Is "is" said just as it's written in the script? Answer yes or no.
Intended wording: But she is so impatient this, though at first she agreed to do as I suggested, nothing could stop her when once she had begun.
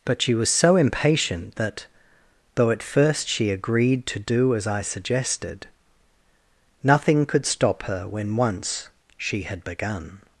no